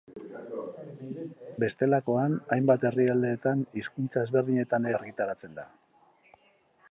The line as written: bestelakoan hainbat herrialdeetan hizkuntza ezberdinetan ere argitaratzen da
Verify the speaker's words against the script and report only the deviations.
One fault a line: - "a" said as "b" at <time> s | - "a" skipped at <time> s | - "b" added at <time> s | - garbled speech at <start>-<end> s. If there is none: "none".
- "ere" skipped at 4.9 s